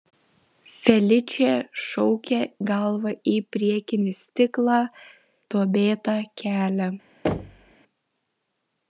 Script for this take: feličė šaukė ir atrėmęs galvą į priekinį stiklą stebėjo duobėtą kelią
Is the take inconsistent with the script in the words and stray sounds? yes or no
yes